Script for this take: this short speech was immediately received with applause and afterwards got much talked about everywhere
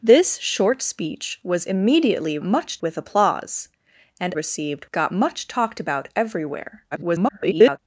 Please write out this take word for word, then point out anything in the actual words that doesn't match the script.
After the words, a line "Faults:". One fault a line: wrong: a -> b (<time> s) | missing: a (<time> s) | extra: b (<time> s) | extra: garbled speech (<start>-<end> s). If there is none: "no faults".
this short speech was immediately much with applause and received got much talked about everywhere [garbled]
Faults:
wrong: received -> much (2.4 s)
wrong: afterwards -> received (4.3 s)
extra: garbled speech (6.9-7.8 s)